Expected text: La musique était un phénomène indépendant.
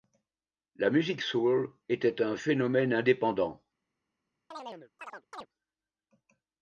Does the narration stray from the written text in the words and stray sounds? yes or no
yes